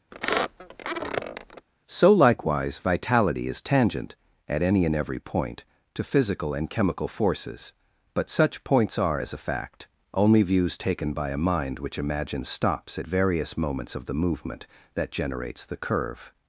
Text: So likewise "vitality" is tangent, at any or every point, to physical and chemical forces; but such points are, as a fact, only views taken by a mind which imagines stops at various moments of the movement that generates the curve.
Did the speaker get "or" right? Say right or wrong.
wrong